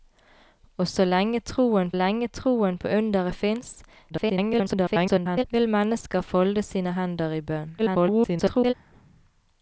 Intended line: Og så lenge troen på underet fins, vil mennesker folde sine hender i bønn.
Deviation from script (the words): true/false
true